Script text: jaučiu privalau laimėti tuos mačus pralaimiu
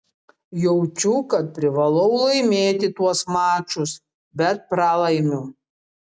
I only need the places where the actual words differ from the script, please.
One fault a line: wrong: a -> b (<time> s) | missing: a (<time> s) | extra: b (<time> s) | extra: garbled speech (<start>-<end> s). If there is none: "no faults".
extra: kad (1.3 s)
extra: bet (4.4 s)